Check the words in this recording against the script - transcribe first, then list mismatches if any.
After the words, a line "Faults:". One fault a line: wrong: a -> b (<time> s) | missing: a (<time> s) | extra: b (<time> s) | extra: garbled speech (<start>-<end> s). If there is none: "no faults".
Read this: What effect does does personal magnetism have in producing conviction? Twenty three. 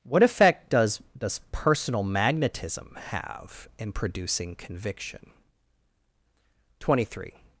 What effect does does personal magnetism have in producing conviction? Twenty three.
Faults:
no faults